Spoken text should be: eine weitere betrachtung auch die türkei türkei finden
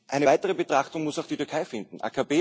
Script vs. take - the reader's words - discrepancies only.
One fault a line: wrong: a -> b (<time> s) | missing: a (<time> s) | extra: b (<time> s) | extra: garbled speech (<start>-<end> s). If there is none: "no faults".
extra: muss (1.0 s)
missing: türkei (1.6 s)